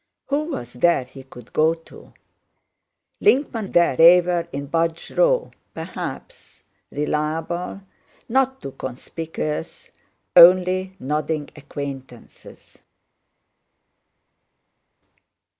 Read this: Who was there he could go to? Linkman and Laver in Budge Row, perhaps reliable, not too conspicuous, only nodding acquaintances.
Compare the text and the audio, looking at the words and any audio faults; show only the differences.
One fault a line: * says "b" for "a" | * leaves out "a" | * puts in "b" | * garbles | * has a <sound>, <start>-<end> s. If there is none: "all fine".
* says "there" for "and"